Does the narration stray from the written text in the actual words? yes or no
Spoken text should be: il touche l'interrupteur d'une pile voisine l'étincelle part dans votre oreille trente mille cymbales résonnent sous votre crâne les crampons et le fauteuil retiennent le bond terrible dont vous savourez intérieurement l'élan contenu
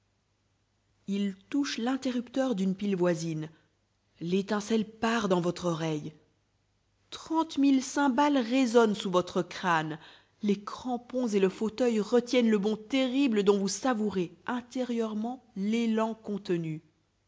no